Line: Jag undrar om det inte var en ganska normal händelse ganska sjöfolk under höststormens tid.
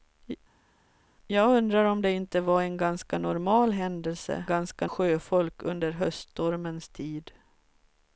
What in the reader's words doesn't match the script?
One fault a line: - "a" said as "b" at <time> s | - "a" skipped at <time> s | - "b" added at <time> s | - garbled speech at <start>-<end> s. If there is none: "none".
none